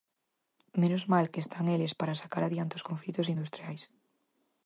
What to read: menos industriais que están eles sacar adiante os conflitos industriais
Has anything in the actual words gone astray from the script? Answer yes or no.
yes